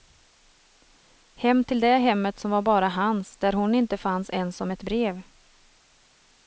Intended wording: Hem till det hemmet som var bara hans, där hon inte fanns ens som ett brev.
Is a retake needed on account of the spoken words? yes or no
no